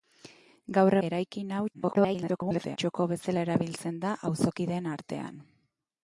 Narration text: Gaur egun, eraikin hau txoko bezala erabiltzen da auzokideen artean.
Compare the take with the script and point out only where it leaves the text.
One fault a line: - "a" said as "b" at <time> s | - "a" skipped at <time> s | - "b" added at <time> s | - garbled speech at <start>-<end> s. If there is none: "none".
- "egun" skipped at 0.9 s
- garbled speech at 1.7-2.8 s